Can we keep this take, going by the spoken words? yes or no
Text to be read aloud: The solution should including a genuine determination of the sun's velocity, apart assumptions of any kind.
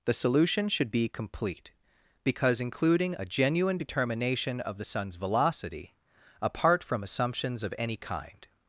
no